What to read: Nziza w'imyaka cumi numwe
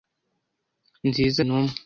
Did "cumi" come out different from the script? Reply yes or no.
yes